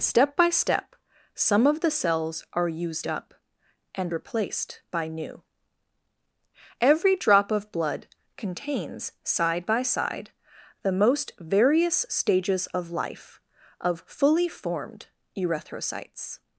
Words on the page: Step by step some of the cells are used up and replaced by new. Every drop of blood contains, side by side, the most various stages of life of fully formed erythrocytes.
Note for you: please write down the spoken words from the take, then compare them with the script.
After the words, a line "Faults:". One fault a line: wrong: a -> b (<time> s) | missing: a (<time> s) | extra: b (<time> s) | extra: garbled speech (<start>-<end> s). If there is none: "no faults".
Step by step some of the cells are used up and replaced by new. Every drop of blood contains, side by side, the most various stages of life of fully formed erythrocytes.
Faults:
no faults